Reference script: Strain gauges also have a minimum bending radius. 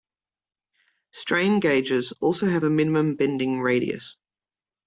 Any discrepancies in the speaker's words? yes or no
no